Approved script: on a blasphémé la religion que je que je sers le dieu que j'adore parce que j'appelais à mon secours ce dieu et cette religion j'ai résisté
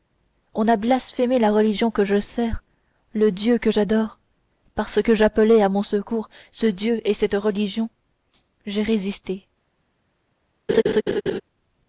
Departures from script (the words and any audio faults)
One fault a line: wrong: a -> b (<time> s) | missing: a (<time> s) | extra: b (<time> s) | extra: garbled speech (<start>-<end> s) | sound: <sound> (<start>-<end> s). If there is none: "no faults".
missing: que je (2.2 s)
sound: laugh (10.7-11.4 s)